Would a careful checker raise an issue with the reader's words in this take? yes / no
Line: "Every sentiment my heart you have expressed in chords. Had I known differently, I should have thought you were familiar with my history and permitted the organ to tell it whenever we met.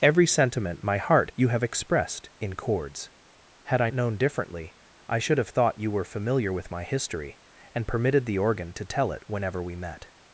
no